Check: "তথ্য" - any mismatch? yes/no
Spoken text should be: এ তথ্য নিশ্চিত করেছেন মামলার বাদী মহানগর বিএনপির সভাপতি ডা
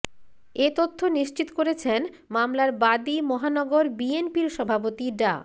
no